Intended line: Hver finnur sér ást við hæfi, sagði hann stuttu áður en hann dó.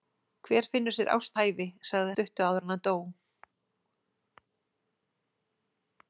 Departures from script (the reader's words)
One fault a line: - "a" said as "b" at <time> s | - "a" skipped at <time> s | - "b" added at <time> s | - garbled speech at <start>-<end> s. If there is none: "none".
- "við" skipped at 1.4 s
- "hann" skipped at 2.1 s